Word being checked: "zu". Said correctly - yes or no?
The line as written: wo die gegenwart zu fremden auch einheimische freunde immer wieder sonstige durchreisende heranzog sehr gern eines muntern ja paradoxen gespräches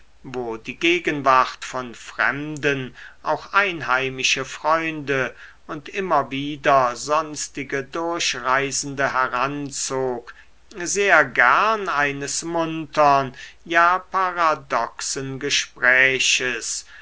no